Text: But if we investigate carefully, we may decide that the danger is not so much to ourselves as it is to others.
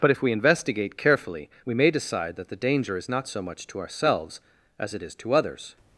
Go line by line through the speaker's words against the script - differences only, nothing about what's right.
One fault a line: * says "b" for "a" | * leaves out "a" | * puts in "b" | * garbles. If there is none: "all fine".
all fine